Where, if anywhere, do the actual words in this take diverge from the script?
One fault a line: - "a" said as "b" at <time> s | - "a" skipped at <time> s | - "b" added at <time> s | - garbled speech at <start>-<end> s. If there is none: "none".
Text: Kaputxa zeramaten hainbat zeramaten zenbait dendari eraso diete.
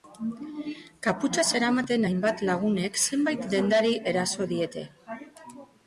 - "zeramaten" said as "lagunek" at 2.5 s